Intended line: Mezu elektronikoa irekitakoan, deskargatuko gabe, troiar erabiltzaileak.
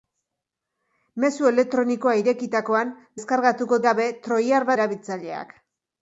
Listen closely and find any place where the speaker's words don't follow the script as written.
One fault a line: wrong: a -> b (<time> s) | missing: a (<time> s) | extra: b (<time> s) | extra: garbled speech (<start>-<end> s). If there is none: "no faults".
no faults